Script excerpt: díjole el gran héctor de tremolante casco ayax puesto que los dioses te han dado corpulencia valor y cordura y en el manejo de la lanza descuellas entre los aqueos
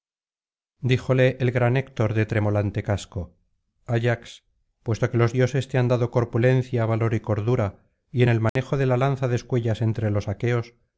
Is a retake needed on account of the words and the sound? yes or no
yes